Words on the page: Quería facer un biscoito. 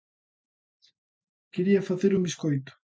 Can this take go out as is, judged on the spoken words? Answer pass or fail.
pass